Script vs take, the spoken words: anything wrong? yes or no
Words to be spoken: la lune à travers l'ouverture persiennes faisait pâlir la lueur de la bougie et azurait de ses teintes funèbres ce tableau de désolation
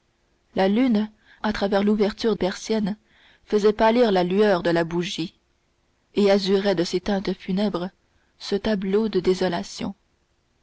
no